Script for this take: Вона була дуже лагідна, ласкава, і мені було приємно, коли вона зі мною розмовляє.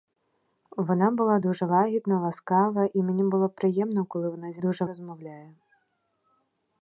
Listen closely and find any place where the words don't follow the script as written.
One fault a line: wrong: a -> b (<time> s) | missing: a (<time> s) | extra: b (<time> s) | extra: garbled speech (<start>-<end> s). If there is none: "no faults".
wrong: мною -> дуже (4.6 s)